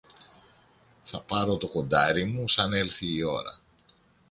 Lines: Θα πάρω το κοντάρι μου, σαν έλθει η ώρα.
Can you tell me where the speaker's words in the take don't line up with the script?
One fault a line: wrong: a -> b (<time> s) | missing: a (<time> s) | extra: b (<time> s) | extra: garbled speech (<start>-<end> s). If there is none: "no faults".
no faults